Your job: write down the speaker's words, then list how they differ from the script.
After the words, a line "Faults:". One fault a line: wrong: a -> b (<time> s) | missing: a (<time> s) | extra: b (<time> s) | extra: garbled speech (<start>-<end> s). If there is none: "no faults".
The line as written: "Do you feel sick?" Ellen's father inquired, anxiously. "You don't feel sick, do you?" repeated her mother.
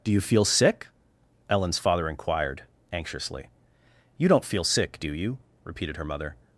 "Do you feel sick?" Ellen's father inquired, anxiously. "You don't feel sick, do you?" repeated her mother.
Faults:
no faults